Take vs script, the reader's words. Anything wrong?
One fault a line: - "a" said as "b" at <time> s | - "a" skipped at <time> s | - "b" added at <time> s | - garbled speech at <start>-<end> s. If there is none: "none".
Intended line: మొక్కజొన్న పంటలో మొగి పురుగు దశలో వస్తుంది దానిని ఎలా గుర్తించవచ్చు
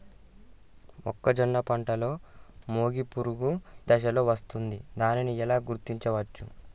none